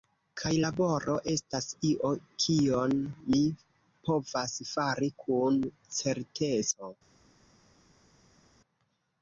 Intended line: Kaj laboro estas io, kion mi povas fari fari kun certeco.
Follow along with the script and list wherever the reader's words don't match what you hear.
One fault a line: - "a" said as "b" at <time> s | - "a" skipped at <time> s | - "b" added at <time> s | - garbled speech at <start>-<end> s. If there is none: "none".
- "fari" skipped at 5.1 s